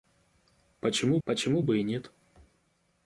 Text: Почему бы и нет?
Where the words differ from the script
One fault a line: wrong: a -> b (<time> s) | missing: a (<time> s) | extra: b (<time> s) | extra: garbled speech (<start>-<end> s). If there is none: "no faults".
extra: почему (1.2 s)